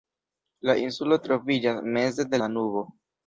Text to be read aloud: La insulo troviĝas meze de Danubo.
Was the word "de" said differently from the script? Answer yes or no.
no